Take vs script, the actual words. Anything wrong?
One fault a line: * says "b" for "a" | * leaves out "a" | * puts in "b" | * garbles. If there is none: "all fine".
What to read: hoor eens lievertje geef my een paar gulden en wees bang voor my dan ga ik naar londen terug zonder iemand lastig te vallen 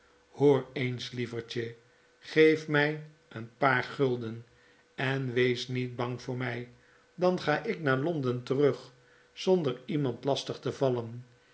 * puts in "niet"